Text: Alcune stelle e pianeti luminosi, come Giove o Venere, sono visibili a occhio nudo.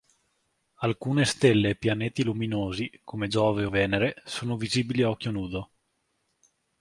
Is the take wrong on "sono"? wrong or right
right